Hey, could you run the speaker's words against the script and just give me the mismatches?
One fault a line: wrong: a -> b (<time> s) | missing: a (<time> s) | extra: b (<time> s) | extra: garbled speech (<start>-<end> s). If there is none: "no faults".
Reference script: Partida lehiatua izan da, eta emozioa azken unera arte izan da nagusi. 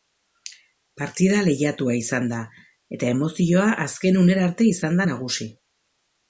no faults